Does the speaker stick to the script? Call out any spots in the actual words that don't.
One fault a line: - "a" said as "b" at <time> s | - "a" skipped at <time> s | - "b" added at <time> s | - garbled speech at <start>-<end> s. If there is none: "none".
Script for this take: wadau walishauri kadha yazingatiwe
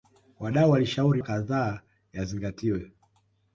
none